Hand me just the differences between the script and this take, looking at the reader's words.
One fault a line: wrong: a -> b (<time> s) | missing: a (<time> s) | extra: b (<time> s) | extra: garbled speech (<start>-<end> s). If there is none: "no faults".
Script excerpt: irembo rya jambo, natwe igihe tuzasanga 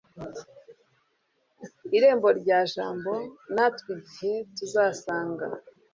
no faults